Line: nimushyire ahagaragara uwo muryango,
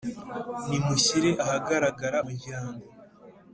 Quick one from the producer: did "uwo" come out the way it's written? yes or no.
no